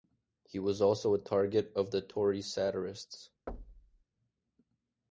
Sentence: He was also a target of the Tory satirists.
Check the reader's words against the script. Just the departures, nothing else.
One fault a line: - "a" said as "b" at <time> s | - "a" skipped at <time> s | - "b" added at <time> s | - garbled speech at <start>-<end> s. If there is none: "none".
none